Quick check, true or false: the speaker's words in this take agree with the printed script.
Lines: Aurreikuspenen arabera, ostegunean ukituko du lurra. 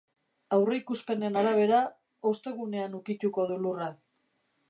true